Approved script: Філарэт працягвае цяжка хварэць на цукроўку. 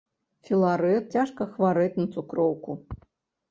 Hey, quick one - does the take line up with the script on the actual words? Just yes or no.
no